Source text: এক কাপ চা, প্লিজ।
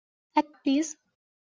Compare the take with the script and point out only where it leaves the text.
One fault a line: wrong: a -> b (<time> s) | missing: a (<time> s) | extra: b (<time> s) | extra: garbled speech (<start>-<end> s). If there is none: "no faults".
missing: কাপ চা (0.5 s)